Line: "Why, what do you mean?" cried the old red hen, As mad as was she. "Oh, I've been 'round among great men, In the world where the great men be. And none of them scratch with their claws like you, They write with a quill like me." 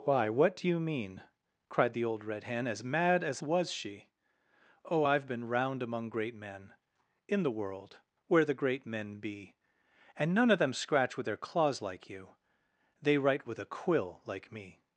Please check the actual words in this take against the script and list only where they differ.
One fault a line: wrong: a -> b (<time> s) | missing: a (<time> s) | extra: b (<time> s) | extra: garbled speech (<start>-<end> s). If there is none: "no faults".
no faults